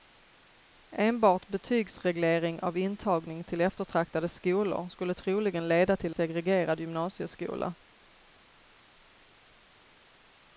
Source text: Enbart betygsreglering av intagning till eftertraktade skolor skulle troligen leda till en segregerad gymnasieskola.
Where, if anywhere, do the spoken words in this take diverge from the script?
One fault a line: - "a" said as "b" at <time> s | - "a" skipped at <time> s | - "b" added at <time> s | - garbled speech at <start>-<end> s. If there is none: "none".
- "en" skipped at 6.1 s